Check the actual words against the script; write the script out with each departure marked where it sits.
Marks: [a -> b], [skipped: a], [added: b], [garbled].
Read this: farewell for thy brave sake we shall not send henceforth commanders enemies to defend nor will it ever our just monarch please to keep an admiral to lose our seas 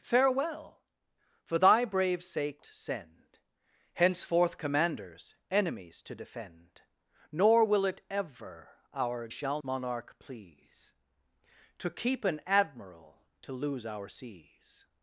farewell for thy brave sake [skipped: we shall not] send henceforth commanders enemies to defend nor will it ever our [just -> shall] monarch please to keep an admiral to lose our seas